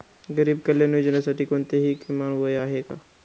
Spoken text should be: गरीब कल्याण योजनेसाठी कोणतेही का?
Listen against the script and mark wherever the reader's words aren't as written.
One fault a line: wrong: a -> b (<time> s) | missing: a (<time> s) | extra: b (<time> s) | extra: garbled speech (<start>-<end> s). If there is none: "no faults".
extra: किमान वय आहे (2.0 s)